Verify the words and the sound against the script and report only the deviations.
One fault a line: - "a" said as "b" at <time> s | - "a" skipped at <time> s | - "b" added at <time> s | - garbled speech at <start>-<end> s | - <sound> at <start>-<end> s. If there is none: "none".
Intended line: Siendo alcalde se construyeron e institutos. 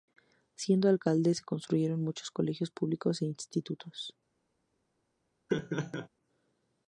- "muchos colegios públicos" added at 2.0 s
- laugh at 5.5-6.1 s